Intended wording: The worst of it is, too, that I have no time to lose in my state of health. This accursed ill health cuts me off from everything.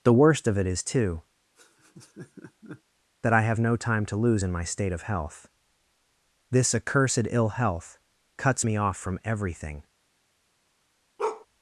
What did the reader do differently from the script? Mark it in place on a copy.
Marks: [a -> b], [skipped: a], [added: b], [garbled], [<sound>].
The worst of it is, too, [laugh] that I have no time to lose in my state of health. This accursed ill health cuts me off from everything. [bark]